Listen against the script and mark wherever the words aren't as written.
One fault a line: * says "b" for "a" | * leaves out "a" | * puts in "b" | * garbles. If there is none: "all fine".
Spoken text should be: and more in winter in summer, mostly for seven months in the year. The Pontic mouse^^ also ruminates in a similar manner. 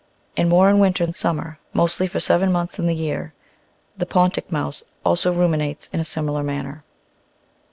all fine